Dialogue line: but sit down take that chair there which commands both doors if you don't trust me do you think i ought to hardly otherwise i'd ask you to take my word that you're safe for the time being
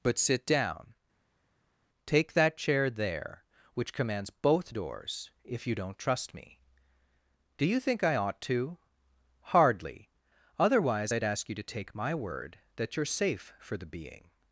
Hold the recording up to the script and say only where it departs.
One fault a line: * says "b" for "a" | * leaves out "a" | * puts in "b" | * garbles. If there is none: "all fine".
* leaves out "time"